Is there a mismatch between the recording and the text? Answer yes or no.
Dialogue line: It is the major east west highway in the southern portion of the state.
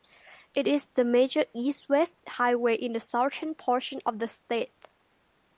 no